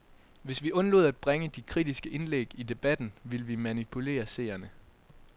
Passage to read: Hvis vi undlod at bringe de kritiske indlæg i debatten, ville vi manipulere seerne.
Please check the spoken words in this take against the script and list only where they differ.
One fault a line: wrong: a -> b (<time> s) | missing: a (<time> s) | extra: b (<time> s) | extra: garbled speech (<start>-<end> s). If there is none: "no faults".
no faults